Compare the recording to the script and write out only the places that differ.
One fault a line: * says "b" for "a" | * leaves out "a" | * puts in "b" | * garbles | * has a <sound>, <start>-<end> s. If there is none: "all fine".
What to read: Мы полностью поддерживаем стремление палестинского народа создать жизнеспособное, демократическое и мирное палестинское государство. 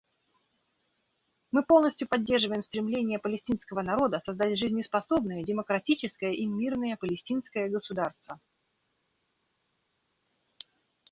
all fine